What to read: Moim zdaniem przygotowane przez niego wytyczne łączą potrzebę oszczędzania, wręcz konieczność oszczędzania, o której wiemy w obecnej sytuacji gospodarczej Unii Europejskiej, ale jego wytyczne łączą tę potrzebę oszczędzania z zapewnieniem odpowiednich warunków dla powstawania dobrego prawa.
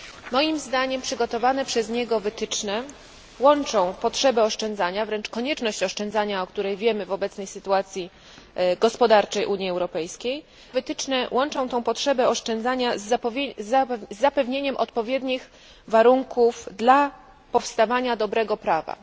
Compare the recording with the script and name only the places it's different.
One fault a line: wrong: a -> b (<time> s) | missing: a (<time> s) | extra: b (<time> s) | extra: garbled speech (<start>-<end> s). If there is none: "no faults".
missing: ale jego (10.4 s)